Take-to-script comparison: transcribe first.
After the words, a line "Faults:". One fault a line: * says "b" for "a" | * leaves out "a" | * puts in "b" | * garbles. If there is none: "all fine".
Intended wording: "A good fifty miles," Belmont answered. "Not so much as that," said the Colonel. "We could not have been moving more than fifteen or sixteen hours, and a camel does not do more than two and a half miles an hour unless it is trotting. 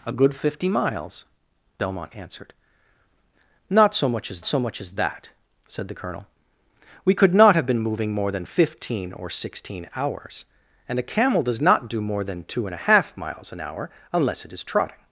"A good fifty miles," Belmont answered. "Not so much as so much as that," said the Colonel. "We could not have been moving more than fifteen or sixteen hours, and a camel does not do more than two and a half miles an hour unless it is trotting.
Faults:
* puts in "so much as"